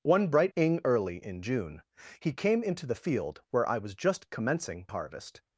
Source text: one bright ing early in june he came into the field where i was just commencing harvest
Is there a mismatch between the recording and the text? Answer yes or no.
no